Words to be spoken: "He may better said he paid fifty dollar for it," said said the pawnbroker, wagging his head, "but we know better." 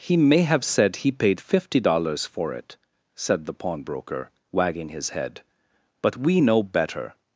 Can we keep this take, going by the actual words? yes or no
no